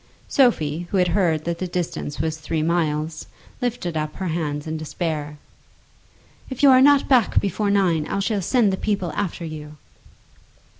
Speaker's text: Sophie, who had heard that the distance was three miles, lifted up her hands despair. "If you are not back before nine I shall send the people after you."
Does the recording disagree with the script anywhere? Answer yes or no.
yes